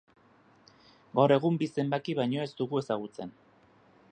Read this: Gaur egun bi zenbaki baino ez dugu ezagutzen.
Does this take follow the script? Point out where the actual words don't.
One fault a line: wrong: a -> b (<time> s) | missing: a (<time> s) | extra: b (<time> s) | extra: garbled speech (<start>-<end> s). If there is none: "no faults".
no faults